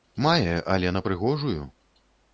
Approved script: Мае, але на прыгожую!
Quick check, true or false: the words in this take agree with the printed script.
true